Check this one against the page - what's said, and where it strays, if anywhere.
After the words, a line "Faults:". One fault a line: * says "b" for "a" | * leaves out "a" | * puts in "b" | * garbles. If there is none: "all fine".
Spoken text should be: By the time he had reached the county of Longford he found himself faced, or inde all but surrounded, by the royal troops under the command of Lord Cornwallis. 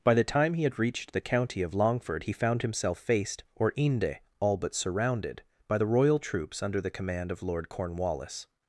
By the time he had reached the county of Longford he found himself faced, or inde all but surrounded, by the royal troops under the command of Lord Cornwallis.
Faults:
all fine